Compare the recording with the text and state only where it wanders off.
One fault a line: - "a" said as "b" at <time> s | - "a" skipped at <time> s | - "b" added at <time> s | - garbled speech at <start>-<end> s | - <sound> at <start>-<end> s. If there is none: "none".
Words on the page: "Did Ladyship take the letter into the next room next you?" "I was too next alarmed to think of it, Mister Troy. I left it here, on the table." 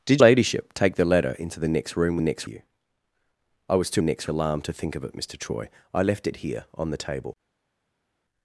none